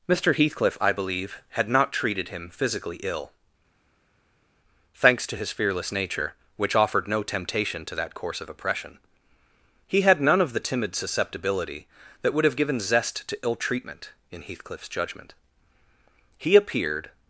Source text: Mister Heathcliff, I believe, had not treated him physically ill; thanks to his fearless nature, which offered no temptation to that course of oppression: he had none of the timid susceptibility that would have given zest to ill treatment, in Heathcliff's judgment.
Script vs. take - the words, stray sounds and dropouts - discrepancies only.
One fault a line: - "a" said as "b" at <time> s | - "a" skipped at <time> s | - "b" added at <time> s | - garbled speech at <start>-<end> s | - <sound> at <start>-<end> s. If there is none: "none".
- "He appeared" added at 16.4 s